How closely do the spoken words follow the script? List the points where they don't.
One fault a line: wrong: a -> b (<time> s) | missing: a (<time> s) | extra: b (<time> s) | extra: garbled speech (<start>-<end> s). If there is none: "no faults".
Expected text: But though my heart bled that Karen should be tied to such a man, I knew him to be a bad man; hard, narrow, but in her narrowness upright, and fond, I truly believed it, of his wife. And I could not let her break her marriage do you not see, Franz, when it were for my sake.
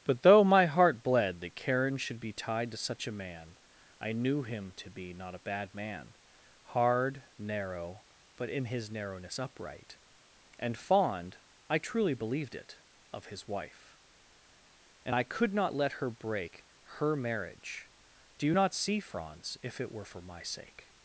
extra: not (5.1 s)
wrong: her -> his (8.7 s)
wrong: when -> if (19.6 s)